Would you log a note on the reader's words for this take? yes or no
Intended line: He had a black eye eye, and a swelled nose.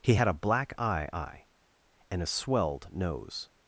no